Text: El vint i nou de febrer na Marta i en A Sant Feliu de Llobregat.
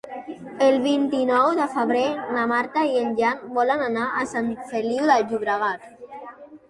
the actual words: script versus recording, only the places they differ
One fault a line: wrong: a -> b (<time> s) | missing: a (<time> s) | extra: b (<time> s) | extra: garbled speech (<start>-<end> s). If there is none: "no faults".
extra: Jan volen anar (3.2 s)